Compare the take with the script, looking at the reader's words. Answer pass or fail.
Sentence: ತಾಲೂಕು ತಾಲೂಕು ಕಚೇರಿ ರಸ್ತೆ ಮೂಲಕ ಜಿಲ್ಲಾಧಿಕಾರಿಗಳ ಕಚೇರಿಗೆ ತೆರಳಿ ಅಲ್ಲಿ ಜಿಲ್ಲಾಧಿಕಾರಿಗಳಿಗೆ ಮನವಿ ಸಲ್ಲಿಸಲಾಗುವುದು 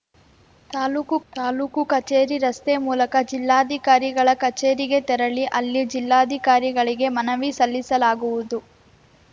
pass